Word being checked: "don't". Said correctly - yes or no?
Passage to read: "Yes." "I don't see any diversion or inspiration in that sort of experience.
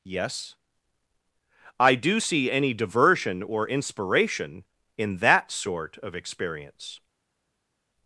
no